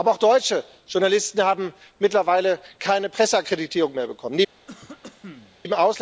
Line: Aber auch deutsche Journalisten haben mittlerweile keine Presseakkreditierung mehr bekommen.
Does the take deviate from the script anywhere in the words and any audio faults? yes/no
yes